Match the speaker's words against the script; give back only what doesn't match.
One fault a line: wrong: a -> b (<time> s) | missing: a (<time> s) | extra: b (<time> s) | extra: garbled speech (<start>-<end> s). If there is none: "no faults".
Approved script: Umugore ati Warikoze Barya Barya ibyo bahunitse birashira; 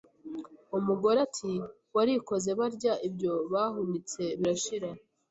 missing: Barya (2.9 s)